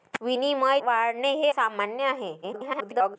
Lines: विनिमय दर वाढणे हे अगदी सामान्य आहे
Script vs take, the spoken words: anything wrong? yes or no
yes